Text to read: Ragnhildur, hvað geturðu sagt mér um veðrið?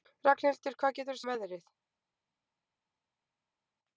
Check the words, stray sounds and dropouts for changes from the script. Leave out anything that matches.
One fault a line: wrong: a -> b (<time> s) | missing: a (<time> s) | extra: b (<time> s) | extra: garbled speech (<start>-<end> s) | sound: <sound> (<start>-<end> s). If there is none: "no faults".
missing: sagt mér (1.2 s)